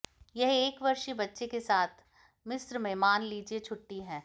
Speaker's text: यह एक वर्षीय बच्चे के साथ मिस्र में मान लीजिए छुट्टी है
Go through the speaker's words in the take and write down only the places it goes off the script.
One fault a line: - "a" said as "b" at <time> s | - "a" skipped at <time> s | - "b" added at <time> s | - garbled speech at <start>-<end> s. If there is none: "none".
none